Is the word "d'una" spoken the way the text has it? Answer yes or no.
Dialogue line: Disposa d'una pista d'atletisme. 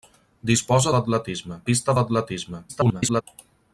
no